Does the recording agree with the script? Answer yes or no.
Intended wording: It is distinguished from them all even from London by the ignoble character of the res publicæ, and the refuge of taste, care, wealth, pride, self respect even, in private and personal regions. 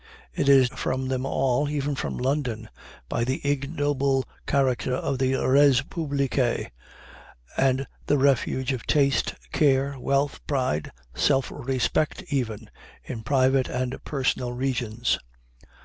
no